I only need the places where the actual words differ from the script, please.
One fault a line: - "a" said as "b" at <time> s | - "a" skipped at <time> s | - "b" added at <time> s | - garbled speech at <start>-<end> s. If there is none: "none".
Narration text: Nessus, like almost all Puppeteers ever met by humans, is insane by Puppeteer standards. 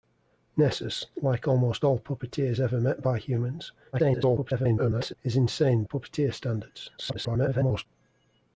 - garbled speech at 3.9-5.1 s
- "by" skipped at 5.8 s
- garbled speech at 7.0-7.9 s